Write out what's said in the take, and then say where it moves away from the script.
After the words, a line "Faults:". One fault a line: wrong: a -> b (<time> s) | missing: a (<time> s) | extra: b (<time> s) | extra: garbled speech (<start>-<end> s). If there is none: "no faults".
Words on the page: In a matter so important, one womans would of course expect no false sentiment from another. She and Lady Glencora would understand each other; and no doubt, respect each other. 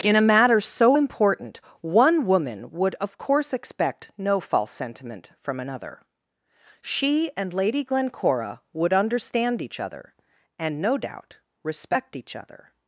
In a matter so important, one woman would of course expect no false sentiment from another. She and Lady Glencora would understand each other; and no doubt, respect each other.
Faults:
wrong: womans -> woman (2.2 s)